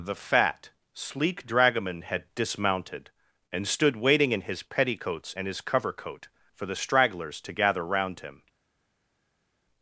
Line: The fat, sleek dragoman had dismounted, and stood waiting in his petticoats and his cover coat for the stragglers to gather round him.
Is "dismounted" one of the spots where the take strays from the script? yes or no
no